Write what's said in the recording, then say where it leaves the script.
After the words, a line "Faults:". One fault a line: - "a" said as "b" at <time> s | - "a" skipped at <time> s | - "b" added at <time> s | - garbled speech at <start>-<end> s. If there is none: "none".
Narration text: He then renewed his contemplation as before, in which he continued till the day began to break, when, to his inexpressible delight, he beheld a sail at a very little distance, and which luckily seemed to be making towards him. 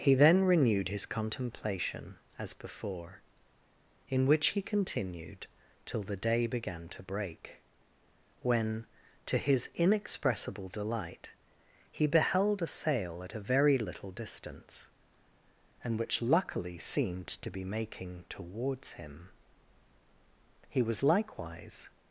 He then renewed his contemplation as before, in which he continued till the day began to break, when, to his inexpressible delight, he beheld a sail at a very little distance, and which luckily seemed to be making towards him. He was likewise
Faults:
- "He was likewise" added at 20.7 s